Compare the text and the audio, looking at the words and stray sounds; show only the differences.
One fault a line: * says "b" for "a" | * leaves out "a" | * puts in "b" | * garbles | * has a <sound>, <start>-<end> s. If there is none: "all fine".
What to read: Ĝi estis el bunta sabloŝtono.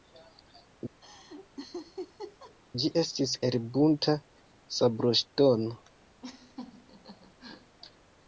* has a laugh, 1.0-2.5 s
* has a laugh, 6.2-7.8 s